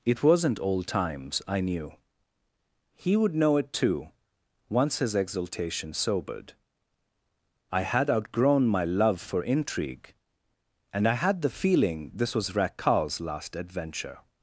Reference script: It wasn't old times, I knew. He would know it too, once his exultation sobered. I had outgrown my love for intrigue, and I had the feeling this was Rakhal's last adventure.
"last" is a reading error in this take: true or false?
false